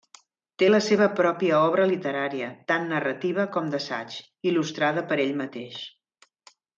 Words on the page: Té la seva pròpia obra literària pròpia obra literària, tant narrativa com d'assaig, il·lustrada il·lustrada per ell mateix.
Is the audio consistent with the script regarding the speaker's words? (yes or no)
no